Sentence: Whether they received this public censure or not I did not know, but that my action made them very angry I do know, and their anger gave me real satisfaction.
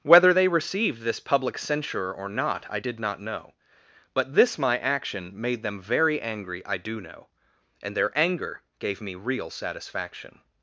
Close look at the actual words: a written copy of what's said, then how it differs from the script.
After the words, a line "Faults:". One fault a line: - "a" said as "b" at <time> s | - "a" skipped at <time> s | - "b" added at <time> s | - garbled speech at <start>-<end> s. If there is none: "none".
Whether they received this public censure or not I did not know, but this my action made them very angry I do know, and their anger gave me real satisfaction.
Faults:
- "that" said as "this" at 4.3 s